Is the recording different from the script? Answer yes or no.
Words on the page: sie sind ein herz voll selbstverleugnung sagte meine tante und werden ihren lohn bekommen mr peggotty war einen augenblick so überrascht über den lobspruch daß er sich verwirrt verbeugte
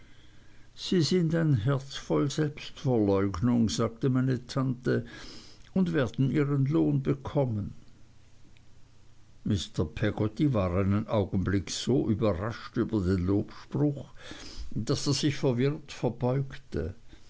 no